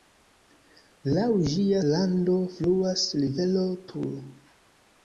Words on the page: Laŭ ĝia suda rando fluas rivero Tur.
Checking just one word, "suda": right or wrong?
wrong